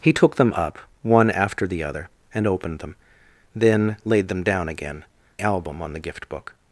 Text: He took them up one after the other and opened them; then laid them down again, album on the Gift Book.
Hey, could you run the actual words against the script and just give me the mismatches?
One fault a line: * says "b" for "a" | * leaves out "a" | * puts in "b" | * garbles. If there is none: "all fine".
all fine